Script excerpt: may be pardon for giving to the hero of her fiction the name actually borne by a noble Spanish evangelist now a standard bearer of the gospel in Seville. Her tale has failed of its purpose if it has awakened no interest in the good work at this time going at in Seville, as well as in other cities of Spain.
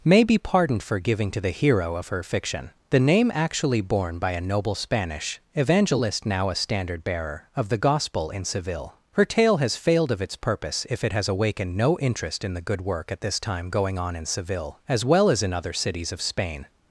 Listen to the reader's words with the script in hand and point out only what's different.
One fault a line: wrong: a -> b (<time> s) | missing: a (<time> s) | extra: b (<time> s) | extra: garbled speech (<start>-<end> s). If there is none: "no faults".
wrong: pardon -> pardoned (0.4 s)
wrong: at -> on (14.0 s)